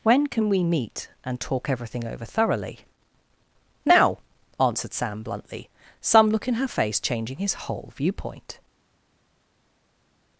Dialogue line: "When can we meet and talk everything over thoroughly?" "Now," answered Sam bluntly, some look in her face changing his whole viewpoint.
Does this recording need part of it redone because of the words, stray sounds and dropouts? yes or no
no